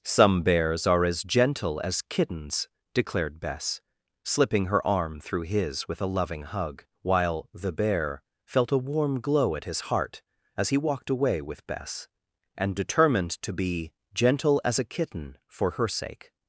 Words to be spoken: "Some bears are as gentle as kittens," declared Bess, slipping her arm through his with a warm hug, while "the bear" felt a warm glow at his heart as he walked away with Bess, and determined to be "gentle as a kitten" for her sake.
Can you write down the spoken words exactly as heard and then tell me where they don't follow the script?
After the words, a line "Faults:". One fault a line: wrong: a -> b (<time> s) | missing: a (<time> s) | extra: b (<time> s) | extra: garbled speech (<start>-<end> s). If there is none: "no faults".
"Some bears are as gentle as kittens," declared Bess, slipping her arm through his with a loving hug, while "the bear" felt a warm glow at his heart as he walked away with Bess, and determined to be "gentle as a kitten" for her sake.
Faults:
wrong: warm -> loving (6.1 s)